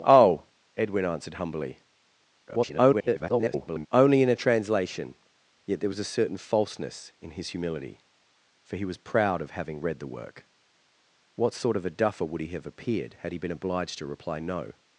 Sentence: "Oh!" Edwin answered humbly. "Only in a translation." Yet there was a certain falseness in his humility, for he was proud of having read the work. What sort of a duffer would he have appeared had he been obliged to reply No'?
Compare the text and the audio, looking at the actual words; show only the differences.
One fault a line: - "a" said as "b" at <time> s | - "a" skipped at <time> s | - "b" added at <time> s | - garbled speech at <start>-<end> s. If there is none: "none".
- garbled speech at 2.5-3.9 s